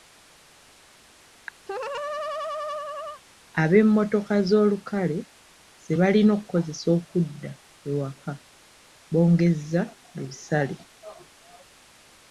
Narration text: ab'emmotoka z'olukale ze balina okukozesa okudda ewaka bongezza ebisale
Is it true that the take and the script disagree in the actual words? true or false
false